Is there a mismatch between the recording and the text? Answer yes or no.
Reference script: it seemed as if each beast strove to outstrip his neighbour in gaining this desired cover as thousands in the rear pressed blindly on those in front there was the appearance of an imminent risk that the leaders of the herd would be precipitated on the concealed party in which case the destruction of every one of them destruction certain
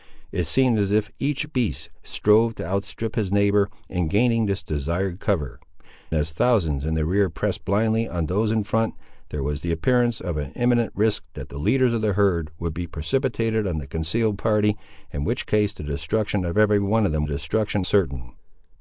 no